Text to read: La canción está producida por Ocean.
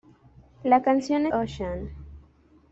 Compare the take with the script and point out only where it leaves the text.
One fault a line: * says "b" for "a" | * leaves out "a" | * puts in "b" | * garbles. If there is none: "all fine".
* leaves out "está producida por"